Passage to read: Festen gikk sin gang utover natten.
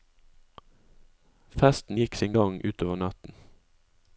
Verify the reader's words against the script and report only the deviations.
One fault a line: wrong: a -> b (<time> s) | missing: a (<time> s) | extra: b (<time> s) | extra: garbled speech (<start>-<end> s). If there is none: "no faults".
no faults